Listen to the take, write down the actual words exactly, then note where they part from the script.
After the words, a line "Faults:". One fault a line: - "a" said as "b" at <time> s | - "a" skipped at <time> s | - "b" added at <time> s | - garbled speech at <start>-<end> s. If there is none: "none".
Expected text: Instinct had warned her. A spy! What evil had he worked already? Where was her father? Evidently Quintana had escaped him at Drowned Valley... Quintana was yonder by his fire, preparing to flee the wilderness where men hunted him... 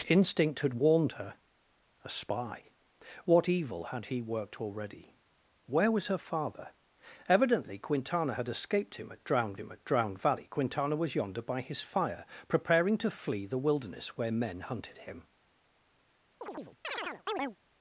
Instinct had warned her. A spy! What evil had he worked already? Where was her father? Evidently Quintana had escaped him at Drowned him at Drowned Valley... Quintana was yonder by his fire, preparing to flee the wilderness where men hunted him...
Faults:
- "him at Drowned" added at 9.5 s